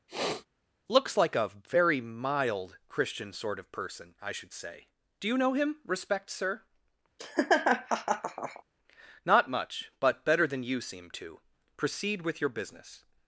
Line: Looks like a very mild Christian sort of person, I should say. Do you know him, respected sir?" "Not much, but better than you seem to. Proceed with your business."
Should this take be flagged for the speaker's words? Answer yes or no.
yes